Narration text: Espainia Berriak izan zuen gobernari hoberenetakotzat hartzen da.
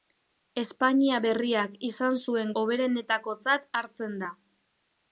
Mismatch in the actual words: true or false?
true